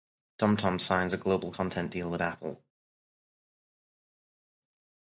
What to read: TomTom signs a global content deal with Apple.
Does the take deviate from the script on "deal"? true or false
false